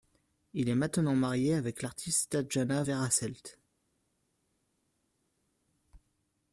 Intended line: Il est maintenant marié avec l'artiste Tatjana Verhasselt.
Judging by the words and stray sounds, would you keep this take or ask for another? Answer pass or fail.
pass